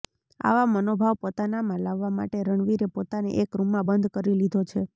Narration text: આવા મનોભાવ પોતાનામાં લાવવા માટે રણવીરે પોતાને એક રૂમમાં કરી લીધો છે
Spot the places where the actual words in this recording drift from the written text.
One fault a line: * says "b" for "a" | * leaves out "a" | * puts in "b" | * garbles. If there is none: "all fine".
* puts in "બંધ"